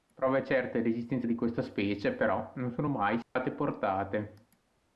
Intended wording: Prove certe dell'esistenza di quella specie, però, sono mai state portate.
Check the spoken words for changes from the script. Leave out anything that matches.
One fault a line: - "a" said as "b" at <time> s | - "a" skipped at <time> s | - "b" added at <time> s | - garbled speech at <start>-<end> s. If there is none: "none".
- "quella" said as "questa" at 1.3 s
- "non" added at 2.5 s